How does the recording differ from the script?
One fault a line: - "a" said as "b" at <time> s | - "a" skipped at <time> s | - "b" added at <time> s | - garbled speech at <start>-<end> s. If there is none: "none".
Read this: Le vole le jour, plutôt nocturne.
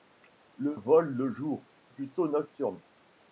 none